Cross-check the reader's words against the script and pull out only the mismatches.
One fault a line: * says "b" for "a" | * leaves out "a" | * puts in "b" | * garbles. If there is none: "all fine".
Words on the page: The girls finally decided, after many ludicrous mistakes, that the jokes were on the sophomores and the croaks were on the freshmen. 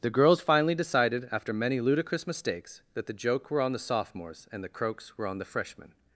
* says "joke" for "jokes"